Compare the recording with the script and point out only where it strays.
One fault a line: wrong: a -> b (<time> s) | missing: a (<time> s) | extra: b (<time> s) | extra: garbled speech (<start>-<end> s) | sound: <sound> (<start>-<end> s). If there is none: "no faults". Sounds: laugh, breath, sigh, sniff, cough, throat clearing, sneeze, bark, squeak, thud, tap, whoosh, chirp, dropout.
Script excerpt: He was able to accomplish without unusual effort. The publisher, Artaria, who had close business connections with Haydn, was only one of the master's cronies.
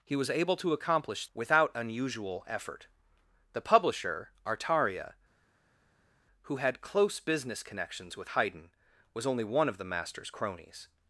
no faults